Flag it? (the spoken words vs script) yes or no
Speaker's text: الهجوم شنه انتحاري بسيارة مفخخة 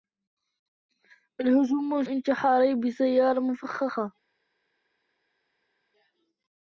yes